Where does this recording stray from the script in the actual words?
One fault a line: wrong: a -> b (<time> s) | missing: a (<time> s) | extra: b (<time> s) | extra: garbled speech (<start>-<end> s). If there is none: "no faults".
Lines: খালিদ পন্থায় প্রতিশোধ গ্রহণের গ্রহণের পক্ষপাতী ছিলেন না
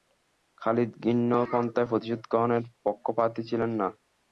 extra: ঘৃণ্য (1.0 s)
missing: গ্রহণের (2.6 s)